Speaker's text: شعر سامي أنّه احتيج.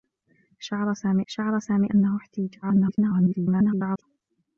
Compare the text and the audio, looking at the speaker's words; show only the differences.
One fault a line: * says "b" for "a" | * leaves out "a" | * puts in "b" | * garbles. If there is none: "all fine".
* puts in "شعر سامي"
* garbles